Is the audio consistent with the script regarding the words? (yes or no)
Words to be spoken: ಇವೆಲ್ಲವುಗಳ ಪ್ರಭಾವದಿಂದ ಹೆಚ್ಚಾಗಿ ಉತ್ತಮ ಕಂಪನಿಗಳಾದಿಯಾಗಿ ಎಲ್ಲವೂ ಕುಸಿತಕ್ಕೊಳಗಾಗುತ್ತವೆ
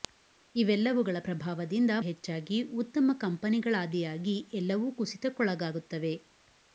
yes